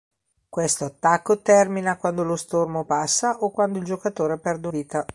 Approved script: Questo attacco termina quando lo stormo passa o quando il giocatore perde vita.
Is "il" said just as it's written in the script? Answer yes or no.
yes